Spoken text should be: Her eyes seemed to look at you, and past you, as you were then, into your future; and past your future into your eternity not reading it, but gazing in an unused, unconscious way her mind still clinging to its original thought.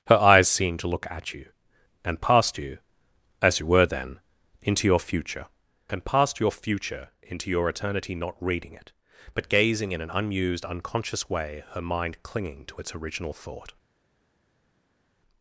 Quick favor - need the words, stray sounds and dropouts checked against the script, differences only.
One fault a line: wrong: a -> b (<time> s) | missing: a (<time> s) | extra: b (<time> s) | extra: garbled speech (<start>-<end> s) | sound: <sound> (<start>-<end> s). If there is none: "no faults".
missing: still (12.2 s)